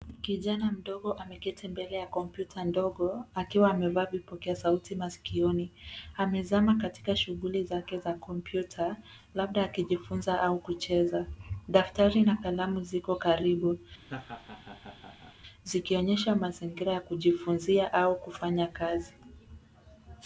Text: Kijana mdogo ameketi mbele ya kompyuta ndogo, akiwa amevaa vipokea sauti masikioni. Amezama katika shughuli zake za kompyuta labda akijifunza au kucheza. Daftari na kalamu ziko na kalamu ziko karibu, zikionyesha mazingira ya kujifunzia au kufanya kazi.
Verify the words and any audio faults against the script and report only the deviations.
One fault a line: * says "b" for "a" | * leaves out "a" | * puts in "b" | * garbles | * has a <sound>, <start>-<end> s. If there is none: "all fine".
* leaves out "na kalamu ziko"
* has a laugh, 14.0-15.4 s